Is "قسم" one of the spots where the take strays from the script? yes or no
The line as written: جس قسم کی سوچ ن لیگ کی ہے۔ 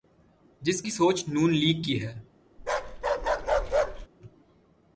yes